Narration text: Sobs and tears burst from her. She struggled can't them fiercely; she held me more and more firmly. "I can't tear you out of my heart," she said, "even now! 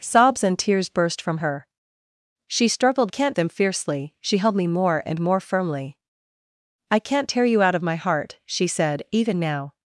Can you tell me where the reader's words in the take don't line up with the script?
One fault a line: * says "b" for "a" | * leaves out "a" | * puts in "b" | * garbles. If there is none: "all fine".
all fine